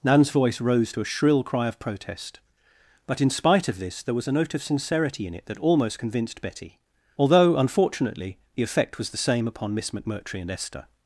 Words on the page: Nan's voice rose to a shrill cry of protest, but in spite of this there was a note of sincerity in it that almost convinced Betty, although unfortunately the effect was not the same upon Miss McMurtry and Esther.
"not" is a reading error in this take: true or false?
true